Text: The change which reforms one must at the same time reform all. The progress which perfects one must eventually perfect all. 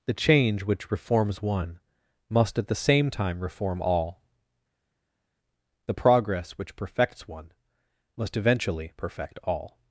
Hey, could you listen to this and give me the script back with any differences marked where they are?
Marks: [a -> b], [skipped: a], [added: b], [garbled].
The change which reforms one must at the same time reform all. The progress which perfects one must eventually perfect all.